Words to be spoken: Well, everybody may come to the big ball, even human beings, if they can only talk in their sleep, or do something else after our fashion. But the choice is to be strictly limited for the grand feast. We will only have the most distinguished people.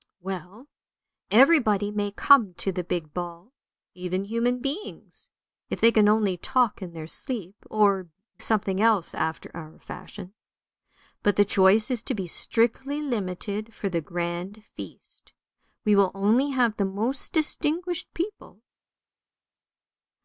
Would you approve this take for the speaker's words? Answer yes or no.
no